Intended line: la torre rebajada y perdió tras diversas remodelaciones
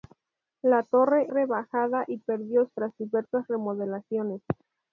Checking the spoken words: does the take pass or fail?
pass